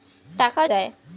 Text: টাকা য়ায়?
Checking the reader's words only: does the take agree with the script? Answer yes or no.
yes